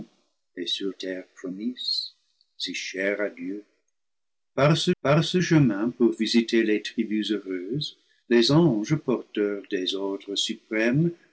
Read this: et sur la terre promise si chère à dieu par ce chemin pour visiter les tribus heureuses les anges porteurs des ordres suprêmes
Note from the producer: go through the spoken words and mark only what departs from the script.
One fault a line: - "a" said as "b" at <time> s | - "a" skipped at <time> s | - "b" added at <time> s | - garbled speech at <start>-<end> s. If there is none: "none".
- "la" skipped at 0.9 s
- "par ce" added at 5.0 s